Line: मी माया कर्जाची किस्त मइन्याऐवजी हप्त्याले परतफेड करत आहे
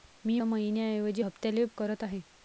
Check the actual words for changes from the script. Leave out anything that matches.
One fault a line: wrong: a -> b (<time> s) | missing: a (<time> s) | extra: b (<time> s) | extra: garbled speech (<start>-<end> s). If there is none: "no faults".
missing: माया कर्जाची किस्त (0.4 s)
missing: परतफेड (1.6 s)